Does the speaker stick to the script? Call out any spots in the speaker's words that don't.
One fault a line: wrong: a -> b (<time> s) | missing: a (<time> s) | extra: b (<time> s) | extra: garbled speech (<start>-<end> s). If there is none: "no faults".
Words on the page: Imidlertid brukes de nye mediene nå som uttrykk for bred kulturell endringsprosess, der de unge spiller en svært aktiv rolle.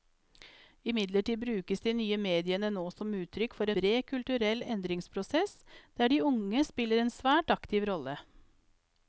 no faults